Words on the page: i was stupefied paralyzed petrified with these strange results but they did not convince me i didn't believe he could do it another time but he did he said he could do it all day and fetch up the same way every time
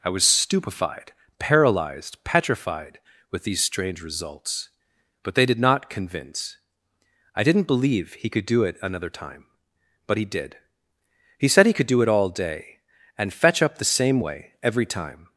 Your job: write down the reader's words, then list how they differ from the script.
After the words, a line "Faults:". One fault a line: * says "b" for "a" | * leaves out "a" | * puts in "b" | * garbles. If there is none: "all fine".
i was stupefied paralyzed petrified with these strange results but they did not convince i didn't believe he could do it another time but he did he said he could do it all day and fetch up the same way every time
Faults:
* leaves out "me"